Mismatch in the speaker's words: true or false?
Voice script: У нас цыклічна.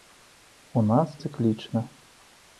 false